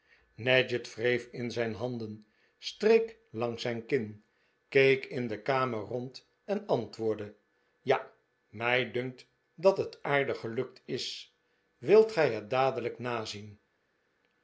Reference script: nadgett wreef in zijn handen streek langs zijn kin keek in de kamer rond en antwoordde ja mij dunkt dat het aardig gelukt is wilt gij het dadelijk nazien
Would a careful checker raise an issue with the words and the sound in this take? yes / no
no